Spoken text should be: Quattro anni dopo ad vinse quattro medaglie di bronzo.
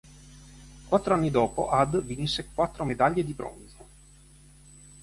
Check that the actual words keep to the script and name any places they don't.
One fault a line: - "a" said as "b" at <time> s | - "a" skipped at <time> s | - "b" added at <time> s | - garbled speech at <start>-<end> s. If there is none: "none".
none